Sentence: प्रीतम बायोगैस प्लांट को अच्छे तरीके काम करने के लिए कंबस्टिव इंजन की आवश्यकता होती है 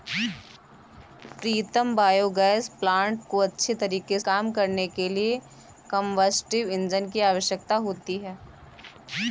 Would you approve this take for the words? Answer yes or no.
yes